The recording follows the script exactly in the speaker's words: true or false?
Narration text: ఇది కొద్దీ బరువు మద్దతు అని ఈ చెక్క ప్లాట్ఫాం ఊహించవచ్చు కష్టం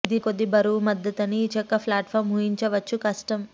true